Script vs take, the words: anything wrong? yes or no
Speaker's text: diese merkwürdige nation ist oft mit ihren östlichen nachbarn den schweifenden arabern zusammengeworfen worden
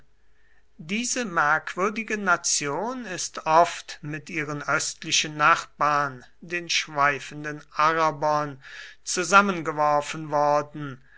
no